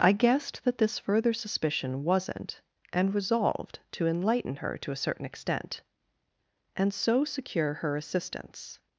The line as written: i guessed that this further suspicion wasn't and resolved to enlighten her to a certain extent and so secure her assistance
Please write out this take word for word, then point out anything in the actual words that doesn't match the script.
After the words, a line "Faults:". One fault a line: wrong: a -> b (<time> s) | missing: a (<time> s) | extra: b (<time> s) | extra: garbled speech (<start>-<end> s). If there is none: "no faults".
i guessed that this further suspicion wasn't and resolved to enlighten her to a certain extent and so secure her assistance
Faults:
no faults